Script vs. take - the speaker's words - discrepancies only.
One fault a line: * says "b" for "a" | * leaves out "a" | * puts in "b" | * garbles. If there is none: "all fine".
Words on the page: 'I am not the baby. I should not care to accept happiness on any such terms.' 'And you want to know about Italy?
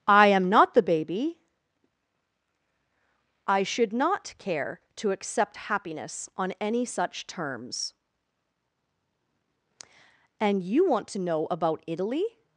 all fine